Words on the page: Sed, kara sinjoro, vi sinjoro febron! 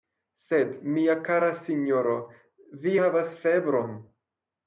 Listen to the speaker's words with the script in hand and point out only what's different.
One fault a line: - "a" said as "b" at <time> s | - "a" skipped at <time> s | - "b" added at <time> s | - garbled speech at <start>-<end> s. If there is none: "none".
- "mia" added at 0.9 s
- "sinjoro" said as "havas" at 3.0 s